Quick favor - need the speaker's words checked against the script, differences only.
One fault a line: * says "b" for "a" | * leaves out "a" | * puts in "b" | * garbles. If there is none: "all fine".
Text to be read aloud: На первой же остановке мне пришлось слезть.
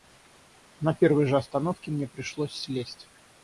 all fine